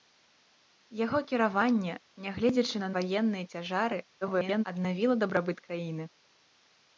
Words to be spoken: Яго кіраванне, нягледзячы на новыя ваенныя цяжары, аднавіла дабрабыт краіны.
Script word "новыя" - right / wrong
wrong